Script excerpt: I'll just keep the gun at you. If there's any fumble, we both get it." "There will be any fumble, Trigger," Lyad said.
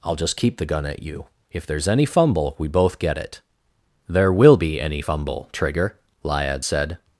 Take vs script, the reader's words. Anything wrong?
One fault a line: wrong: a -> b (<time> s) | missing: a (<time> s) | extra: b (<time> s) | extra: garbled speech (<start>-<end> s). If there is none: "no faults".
no faults